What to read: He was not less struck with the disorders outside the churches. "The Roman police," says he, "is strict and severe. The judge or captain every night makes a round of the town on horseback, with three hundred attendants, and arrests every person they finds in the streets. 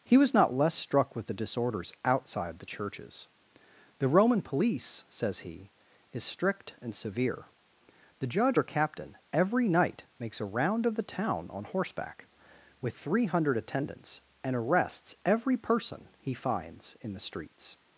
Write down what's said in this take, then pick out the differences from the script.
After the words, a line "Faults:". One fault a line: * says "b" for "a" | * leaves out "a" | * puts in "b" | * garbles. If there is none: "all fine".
He was not less struck with the disorders outside the churches. "The Roman police," says he, "is strict and severe. The judge or captain every night makes a round of the town on horseback, with three hundred attendants, and arrests every person he finds in the streets.
Faults:
* says "he" for "they"